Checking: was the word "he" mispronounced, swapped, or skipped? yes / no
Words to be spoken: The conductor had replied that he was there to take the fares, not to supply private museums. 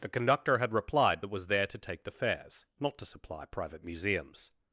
yes